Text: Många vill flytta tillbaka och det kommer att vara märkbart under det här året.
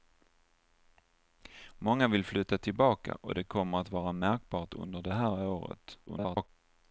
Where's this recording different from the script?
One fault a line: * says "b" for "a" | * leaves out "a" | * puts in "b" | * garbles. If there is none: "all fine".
* garbles